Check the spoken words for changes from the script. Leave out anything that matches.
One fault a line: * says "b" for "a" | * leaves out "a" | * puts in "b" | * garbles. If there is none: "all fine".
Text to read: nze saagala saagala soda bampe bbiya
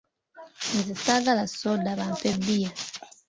* leaves out "saagala"